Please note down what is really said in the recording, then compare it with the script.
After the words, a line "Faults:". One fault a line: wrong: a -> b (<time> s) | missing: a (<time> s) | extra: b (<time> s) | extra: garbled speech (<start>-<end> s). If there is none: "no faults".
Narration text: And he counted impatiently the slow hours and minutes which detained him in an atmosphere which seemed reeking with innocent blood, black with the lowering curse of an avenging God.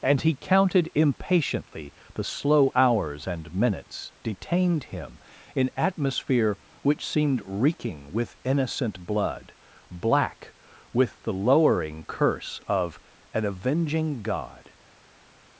And he counted impatiently the slow hours and minutes detained him in atmosphere which seemed reeking with innocent blood, black with the lowering curse of an avenging God.
Faults:
missing: which (4.1 s)
missing: an (5.7 s)